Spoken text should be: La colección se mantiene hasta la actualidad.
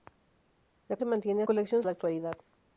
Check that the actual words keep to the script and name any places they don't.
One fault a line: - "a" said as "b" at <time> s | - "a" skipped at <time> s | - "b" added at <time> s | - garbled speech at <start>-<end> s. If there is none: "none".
- "colección" skipped at 1.0 s
- "hasta" said as "colección" at 1.4 s